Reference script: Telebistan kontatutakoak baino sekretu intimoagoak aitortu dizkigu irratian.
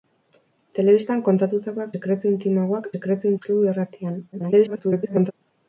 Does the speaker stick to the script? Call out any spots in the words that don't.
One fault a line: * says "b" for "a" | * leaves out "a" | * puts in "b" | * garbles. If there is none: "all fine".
* leaves out "baino"
* says "sekretu" for "aitortu"
* garbles